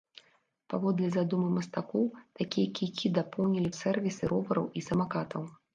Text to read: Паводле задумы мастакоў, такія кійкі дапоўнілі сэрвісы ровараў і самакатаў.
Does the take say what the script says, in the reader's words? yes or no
yes